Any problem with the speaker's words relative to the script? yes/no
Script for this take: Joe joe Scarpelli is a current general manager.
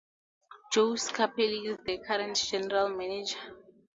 yes